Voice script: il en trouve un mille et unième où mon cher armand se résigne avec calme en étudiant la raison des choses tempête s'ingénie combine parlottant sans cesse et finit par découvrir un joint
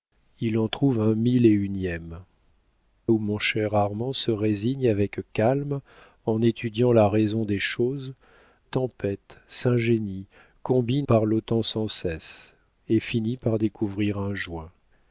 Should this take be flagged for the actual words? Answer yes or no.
no